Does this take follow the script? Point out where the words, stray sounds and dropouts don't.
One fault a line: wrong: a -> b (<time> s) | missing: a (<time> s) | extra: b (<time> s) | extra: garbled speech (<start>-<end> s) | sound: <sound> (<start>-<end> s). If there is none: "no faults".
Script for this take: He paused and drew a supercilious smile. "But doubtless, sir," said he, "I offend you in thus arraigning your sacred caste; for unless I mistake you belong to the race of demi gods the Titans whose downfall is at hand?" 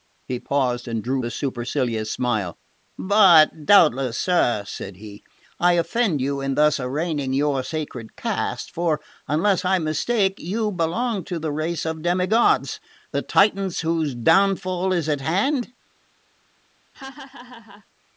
sound: laugh (16.9-17.9 s)